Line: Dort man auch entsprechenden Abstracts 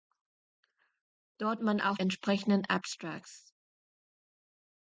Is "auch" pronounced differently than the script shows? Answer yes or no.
no